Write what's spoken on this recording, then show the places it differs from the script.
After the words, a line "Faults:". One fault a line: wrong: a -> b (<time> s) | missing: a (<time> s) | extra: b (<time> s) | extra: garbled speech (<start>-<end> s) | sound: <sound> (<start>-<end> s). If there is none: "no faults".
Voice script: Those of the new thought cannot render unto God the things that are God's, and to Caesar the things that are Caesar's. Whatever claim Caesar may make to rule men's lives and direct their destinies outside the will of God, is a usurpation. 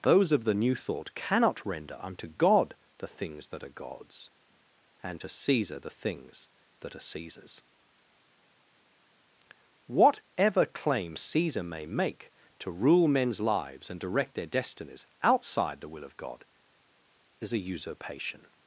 Those of the new thought cannot render unto God the things that are God's, and to Caesar the things that are Caesar's. Whatever claim Caesar may make to rule men's lives and direct their destinies outside the will of God, is a usurpation.
Faults:
no faults